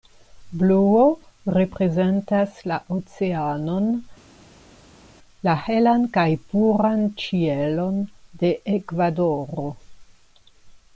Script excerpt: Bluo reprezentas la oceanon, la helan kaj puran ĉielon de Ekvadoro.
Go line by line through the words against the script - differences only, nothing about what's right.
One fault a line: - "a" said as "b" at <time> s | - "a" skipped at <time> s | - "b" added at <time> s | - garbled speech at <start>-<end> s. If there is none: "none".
none